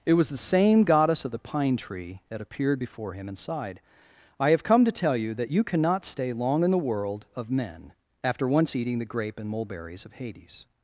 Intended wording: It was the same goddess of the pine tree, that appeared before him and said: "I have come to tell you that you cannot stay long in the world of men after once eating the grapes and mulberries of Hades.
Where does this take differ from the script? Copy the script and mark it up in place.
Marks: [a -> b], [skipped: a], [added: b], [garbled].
It was the same goddess of the pine tree, that appeared before him and [said: -> sighed] "I have come to tell you that you cannot stay long in the world of men after once eating the [grapes -> grape] and mulberries of Hades.